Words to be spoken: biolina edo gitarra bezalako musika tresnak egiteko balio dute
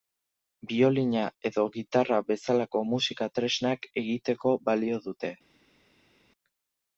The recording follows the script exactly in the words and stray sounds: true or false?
true